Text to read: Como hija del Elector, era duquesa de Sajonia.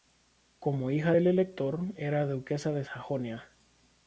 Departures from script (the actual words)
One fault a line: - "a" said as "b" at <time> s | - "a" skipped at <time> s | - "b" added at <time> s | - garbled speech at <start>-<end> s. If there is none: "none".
none